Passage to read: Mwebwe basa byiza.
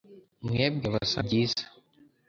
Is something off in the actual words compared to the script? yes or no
no